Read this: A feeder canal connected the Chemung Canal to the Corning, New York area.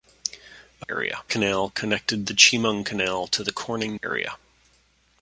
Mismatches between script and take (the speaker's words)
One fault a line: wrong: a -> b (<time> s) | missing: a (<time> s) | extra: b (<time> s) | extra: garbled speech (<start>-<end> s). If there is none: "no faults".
wrong: feeder -> area (0.9 s)
missing: New York (4.0 s)